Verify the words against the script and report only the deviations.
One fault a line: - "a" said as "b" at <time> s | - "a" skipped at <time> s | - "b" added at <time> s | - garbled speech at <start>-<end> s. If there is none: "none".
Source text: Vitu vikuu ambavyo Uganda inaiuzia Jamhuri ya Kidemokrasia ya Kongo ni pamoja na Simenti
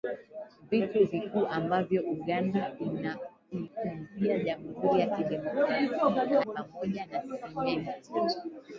- "ya Kongo ni" skipped at 5.8 s